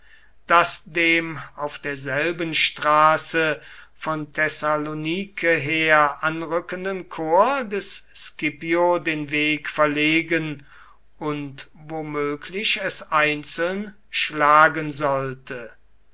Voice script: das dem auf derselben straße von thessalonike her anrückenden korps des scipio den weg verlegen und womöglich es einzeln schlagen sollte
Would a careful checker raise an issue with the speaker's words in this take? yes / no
no